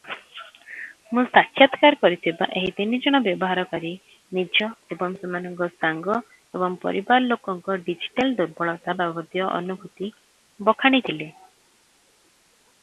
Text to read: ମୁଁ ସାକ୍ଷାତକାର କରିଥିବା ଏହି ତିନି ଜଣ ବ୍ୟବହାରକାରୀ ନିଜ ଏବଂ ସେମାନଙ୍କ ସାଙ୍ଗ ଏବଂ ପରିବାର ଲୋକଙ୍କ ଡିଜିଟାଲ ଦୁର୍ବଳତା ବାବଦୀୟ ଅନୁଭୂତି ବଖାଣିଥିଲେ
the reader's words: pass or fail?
pass